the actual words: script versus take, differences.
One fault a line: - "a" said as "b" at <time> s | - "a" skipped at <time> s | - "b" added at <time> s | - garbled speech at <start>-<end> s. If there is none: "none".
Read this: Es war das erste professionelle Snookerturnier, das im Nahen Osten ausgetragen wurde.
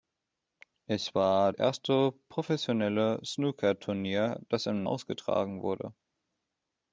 - "das" skipped at 1.5 s
- "Nahen Osten" skipped at 4.8 s